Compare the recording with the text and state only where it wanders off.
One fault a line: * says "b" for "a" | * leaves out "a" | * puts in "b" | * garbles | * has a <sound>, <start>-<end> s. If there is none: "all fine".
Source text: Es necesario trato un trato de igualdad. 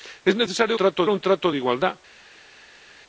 all fine